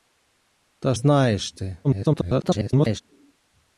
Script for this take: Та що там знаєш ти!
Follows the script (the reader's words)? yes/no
no